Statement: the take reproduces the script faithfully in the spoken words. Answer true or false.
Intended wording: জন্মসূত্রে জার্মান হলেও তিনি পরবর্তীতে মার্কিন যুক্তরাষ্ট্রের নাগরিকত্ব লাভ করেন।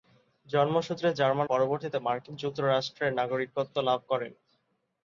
false